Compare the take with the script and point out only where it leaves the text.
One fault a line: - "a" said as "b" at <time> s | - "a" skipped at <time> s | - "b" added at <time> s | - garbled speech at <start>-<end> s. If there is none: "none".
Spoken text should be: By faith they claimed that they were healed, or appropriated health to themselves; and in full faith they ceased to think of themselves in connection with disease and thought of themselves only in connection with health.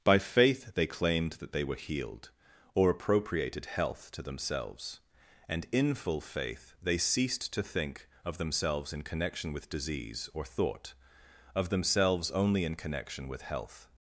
- "and" said as "or" at 10.3 s